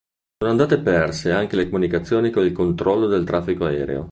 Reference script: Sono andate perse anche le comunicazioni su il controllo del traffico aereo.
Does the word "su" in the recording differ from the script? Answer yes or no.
yes